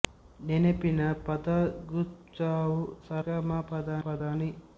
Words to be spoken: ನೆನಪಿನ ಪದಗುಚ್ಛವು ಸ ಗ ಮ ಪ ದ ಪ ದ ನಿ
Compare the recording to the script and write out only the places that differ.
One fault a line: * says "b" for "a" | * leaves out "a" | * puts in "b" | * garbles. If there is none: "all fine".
all fine